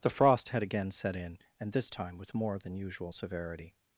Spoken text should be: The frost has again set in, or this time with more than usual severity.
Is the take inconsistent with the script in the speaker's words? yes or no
yes